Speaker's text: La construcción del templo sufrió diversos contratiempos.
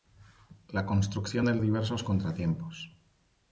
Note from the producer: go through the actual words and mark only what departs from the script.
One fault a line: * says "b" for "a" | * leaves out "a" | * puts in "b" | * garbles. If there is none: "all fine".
* leaves out "templo sufrió"